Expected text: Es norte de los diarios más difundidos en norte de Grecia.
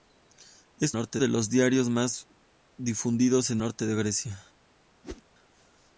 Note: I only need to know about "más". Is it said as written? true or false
true